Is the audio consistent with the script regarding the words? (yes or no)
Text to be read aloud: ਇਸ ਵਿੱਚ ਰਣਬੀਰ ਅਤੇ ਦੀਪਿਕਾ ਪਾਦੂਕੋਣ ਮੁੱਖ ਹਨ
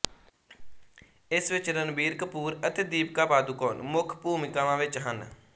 no